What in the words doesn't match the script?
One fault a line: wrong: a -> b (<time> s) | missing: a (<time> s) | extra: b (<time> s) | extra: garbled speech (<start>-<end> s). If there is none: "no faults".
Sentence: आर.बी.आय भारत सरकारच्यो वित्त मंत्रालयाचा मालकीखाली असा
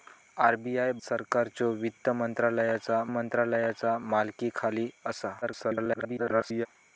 missing: भारत (0.9 s)
extra: मंत्रालयाचा (3.1 s)
extra: garbled speech (5.4-6.7 s)